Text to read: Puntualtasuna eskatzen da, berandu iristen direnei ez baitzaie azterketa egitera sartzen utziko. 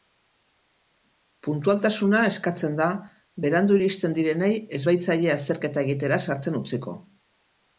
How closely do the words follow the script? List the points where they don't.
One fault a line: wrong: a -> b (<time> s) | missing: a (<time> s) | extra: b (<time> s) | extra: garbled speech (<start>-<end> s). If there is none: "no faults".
no faults